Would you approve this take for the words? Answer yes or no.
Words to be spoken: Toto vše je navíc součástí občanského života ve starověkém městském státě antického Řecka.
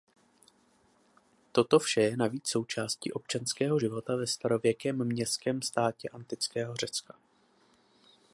yes